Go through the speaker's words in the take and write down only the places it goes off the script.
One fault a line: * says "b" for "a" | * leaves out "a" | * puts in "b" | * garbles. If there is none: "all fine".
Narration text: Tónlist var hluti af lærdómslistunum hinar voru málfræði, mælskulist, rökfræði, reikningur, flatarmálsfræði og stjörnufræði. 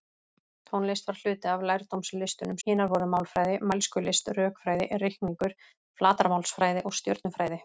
all fine